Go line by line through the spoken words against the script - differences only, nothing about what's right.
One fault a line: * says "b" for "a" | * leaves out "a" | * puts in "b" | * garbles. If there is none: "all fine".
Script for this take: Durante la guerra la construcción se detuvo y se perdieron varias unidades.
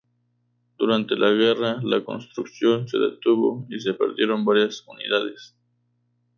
all fine